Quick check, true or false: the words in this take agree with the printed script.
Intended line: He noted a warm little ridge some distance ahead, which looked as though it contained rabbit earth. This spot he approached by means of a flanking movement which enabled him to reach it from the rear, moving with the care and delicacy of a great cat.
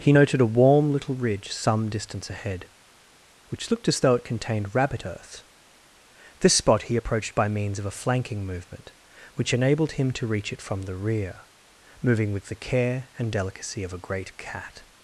true